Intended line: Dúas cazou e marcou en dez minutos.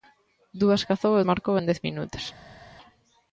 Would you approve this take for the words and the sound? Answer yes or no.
yes